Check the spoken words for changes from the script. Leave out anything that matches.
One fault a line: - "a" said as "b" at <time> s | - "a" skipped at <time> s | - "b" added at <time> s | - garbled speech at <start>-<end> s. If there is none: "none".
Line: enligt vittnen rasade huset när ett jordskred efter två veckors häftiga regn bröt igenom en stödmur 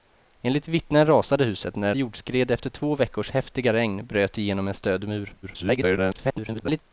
- "ett" skipped at 1.9 s
- garbled speech at 5.4-6.8 s